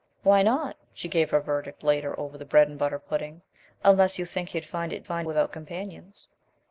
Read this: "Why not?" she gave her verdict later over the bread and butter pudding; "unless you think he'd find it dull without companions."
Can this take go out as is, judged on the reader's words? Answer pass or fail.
fail